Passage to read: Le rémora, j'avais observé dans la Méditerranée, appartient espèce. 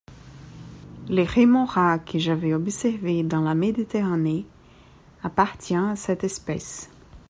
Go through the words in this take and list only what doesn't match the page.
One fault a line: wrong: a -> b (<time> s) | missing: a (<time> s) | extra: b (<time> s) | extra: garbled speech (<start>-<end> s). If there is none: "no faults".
extra: que (2.0 s)
extra: à cette (5.8 s)